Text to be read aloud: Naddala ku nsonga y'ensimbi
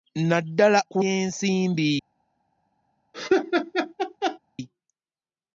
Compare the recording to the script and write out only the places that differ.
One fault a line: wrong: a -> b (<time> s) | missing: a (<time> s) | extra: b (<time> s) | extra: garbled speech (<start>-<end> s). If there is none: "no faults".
missing: nsonga (1.0 s)